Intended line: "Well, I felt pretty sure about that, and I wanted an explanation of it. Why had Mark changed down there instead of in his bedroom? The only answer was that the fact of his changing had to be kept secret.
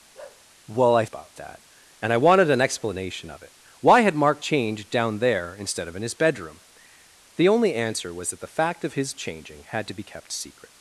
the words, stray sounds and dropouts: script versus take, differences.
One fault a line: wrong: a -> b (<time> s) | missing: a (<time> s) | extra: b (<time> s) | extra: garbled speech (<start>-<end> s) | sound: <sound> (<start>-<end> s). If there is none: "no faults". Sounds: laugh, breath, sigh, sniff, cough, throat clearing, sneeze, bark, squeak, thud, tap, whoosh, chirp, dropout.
sound: bark (0.1-0.4 s)
missing: felt pretty sure (1.0 s)